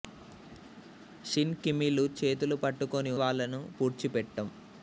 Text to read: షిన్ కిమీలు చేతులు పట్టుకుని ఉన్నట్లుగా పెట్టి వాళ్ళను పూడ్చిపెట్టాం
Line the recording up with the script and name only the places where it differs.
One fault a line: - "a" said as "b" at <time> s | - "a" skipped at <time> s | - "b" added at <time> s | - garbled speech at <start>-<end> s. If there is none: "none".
- "ఉన్నట్లుగా పెట్టి" skipped at 3.1 s